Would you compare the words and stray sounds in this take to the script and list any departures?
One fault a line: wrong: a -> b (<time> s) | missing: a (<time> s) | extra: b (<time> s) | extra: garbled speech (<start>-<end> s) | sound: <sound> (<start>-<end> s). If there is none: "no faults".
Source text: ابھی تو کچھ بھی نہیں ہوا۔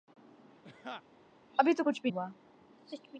sound: laugh (0.6-1.0 s)
missing: نہیں (2.1 s)